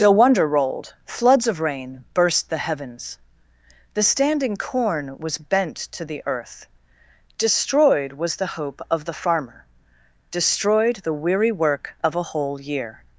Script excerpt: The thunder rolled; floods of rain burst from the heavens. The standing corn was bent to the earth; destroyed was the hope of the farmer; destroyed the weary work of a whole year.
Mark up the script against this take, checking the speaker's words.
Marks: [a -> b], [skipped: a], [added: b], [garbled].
The [thunder -> wonder] rolled; floods of rain burst [skipped: from] the heavens. The standing corn was bent to the earth; destroyed was the hope of the farmer; destroyed the weary work of a whole year.